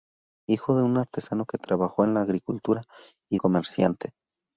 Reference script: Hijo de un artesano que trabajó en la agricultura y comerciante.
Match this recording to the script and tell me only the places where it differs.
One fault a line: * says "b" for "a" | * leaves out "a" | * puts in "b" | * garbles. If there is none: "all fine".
all fine